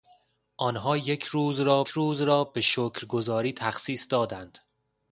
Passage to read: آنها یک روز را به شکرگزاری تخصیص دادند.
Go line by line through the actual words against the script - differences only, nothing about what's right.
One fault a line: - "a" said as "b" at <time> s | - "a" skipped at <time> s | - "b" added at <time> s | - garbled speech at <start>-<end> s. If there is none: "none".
- "روز را" added at 1.9 s